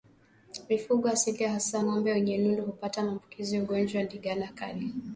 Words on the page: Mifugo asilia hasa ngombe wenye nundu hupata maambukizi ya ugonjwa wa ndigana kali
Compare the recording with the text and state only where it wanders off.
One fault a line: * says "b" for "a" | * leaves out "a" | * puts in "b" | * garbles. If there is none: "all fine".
all fine